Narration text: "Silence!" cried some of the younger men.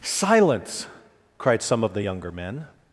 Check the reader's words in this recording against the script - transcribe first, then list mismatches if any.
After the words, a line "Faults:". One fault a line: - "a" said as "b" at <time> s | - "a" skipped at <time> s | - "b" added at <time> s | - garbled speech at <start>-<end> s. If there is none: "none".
"Silence!" cried some of the younger men.
Faults:
none